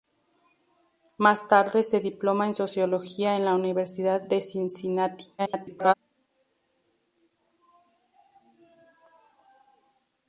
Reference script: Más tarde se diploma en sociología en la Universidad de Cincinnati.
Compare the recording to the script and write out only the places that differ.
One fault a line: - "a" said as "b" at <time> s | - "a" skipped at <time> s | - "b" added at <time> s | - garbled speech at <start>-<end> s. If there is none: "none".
- garbled speech at 5.4-5.9 s